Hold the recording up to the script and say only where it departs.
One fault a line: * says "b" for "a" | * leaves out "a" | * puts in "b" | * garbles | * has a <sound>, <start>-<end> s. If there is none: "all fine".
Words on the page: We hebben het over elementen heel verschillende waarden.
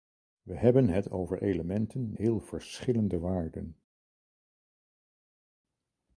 all fine